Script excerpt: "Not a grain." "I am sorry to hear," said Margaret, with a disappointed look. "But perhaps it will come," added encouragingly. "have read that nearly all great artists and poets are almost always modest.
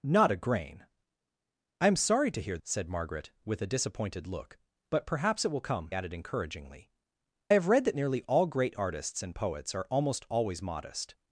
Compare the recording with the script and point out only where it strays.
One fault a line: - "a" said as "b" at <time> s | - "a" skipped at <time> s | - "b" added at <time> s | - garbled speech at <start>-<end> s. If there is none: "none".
none